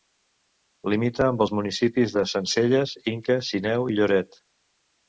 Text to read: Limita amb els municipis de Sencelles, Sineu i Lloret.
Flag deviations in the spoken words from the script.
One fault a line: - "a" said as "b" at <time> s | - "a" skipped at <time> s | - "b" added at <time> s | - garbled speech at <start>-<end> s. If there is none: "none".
- "Inca" added at 3.2 s